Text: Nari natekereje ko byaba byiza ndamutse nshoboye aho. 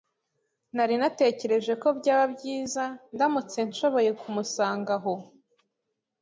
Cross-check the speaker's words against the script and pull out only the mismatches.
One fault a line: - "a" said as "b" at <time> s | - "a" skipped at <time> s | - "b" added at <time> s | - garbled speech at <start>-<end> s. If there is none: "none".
- "kumusanga" added at 4.2 s